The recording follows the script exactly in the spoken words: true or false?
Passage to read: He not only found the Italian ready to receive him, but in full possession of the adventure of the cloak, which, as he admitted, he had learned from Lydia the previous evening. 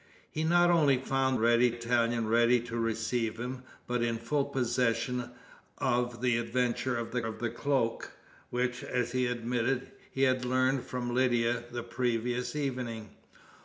false